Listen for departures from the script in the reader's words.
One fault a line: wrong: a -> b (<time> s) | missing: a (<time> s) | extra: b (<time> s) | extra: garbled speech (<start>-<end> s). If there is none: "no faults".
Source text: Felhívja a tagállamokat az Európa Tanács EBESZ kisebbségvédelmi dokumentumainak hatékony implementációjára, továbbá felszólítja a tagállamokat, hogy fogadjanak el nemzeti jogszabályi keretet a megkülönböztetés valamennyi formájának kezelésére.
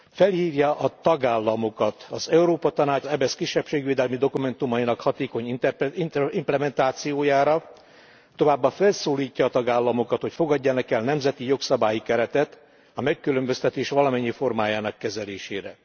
no faults